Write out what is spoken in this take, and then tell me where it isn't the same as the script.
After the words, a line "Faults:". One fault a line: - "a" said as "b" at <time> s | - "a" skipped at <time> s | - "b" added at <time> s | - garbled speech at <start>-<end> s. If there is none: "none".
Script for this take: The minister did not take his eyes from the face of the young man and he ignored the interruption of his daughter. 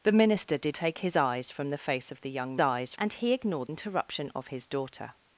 The minister did take his eyes from the face of the young eyes and he ignored interruption of his daughter.
Faults:
- "not" skipped at 0.8 s
- "man" said as "eyes" at 2.6 s
- "the" skipped at 3.7 s